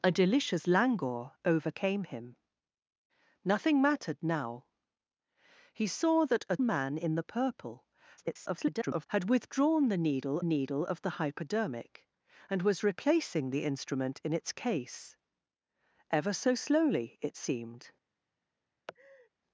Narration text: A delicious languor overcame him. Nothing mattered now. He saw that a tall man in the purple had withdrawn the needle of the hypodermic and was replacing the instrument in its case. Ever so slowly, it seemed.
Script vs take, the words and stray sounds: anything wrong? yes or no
yes